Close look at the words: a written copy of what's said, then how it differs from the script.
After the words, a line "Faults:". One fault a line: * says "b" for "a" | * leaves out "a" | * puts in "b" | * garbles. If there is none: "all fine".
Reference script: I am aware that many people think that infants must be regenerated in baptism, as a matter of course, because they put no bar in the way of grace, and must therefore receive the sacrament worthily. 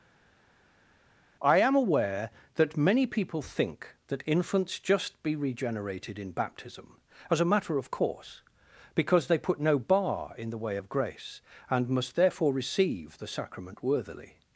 I am aware that many people think that infants just be regenerated in baptism, as a matter of course, because they put no bar in the way of grace, and must therefore receive the sacrament worthily.
Faults:
* says "just" for "must"